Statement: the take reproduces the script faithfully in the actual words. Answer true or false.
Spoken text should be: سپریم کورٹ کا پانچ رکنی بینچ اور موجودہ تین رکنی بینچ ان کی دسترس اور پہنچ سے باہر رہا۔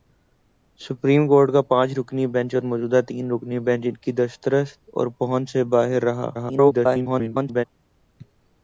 false